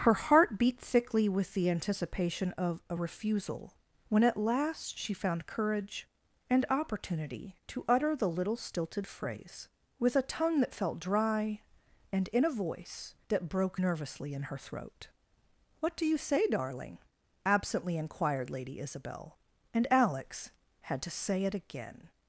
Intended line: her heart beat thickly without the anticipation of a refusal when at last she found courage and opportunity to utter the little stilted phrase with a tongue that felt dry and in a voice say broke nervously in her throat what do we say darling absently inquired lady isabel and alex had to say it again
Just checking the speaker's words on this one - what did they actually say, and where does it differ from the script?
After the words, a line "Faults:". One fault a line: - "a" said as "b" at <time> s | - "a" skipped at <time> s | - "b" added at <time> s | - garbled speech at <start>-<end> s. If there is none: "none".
her heart beat thickly with the anticipation of a refusal when at last she found courage and opportunity to utter the little stilted phrase with a tongue that felt dry and in a voice that broke nervously in her throat what do you say darling absently inquired lady isabel and alex had to say it again
Faults:
- "without" said as "with" at 1.3 s
- "say" said as "that" at 13.3 s
- "we" said as "you" at 16.0 s